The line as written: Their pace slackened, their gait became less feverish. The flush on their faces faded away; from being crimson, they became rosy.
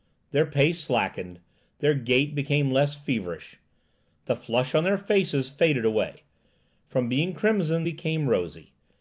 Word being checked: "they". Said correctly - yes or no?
no